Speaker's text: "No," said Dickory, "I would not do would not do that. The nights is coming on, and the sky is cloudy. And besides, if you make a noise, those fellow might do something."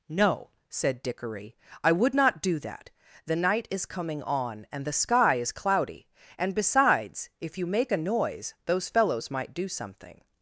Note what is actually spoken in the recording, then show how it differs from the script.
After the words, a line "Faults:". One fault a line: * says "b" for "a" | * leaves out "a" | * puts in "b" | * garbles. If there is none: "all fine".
"No," said Dickory, "I would not do that. The night is coming on, and the sky is cloudy. And besides, if you make a noise, those fellows might do something."
Faults:
* leaves out "would not do"
* says "night" for "nights"
* says "fellows" for "fellow"